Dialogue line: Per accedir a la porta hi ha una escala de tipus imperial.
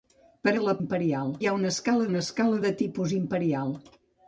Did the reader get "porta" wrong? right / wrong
wrong